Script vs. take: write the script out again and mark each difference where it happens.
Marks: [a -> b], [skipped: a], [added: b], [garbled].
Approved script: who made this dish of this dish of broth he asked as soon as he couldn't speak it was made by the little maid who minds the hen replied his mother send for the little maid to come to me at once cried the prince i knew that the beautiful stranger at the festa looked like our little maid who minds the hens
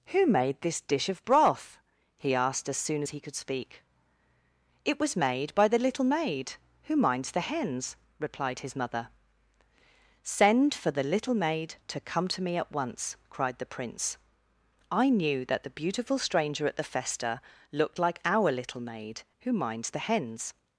who made this dish of [skipped: this dish of] broth he asked as soon as he [couldn't -> could] speak it was made by the little maid who minds the [hen -> hens] replied his mother send for the little maid to come to me at once cried the prince i knew that the beautiful stranger at the festa looked like our little maid who minds the hens